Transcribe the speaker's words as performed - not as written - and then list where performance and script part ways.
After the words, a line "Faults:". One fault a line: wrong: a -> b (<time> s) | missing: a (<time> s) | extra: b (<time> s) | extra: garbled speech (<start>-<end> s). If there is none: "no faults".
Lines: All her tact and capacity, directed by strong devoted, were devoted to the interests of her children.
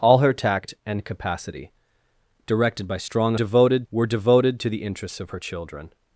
All her tact and capacity, directed by strong devoted, were devoted to the interests of her children.
Faults:
no faults